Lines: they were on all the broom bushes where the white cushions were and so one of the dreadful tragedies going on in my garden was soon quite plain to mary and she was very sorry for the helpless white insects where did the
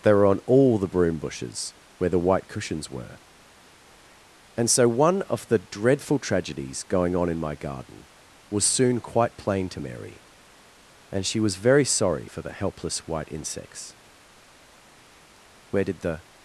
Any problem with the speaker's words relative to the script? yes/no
no